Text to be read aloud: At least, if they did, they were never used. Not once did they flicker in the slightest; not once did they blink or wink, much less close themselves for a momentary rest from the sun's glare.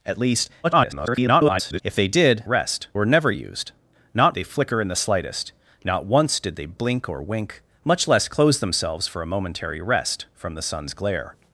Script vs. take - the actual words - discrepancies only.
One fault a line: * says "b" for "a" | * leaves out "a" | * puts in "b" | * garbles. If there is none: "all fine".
* garbles
* says "rest" for "they"
* leaves out "once did"